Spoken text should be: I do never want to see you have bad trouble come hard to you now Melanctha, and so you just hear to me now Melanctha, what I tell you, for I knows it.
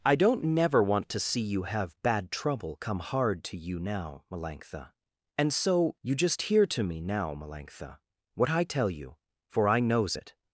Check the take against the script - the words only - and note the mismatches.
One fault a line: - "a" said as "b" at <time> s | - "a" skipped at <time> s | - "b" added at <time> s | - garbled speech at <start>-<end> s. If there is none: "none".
- "do" said as "don't" at 0.1 s